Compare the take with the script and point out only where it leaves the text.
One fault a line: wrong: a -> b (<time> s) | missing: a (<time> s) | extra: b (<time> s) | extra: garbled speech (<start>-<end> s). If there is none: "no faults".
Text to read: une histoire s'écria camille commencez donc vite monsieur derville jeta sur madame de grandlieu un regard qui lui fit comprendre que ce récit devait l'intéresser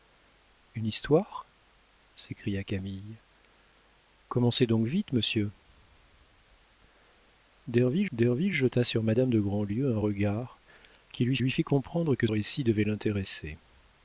extra: derville (8.1 s)
extra: lui (11.4 s)
missing: ce (12.3 s)